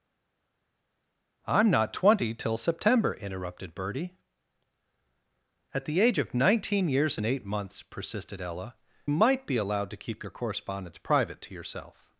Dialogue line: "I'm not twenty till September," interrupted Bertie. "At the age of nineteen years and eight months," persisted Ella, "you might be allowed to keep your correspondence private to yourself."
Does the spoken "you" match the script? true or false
false